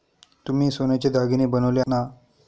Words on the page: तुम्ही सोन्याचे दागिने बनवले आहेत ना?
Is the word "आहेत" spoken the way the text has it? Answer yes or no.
no